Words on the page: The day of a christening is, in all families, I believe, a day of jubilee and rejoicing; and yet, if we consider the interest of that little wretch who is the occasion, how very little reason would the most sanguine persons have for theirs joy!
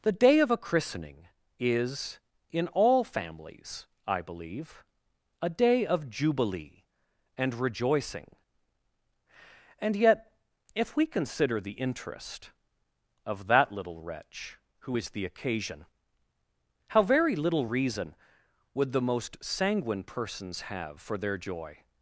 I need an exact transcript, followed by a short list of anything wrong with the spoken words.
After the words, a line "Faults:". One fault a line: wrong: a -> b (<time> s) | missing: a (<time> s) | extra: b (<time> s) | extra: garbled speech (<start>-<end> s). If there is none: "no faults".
The day of a christening is, in all families, I believe, a day of jubilee and rejoicing; and yet, if we consider the interest of that little wretch who is the occasion, how very little reason would the most sanguine persons have for their joy!
Faults:
wrong: theirs -> their (21.2 s)